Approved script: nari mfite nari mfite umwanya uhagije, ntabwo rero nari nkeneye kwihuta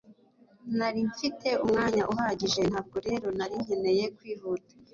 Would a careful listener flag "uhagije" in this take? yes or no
no